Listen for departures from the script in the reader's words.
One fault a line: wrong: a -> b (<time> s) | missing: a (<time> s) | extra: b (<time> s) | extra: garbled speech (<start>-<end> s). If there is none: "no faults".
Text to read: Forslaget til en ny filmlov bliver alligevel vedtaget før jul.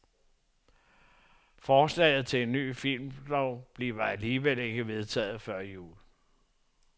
extra: ikke (4.6 s)